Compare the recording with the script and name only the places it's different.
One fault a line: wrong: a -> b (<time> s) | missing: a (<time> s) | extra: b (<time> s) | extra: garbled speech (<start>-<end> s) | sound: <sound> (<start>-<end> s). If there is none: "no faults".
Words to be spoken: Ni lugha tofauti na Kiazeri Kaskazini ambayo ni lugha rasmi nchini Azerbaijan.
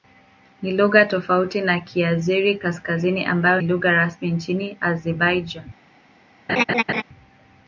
missing: ni (3.6 s)
sound: laugh (6.5-7.0 s)